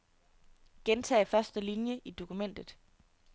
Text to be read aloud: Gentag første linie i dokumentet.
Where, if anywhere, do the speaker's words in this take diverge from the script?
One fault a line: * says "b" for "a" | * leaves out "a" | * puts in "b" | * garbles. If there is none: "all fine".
all fine